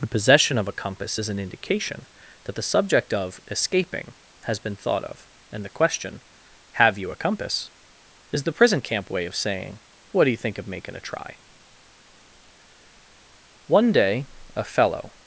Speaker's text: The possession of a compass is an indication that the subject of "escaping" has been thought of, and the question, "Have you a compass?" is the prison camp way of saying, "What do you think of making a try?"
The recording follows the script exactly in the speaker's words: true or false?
false